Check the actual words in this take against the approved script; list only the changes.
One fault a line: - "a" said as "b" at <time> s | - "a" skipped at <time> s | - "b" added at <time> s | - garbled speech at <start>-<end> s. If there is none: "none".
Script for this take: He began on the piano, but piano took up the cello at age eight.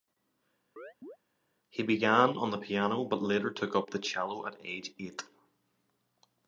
- "piano" said as "later" at 3.2 s